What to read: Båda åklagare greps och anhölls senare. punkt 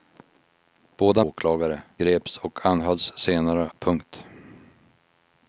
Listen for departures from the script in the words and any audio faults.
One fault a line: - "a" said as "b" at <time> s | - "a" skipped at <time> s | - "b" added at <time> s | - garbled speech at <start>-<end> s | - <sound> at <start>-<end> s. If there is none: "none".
none